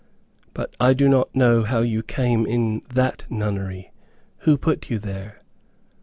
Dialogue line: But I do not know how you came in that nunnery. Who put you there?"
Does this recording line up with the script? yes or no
yes